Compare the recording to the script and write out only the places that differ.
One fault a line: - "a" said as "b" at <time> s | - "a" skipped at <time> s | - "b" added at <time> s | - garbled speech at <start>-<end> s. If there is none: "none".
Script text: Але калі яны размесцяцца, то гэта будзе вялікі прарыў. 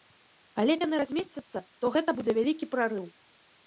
- "калі" skipped at 0.8 s